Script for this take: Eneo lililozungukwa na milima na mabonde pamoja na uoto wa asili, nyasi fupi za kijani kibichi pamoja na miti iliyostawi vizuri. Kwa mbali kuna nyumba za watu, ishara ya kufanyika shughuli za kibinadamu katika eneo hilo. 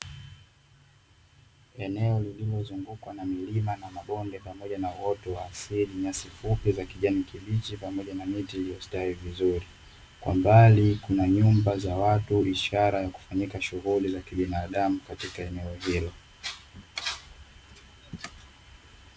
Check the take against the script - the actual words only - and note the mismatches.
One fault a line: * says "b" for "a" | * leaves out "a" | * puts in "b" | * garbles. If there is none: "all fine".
all fine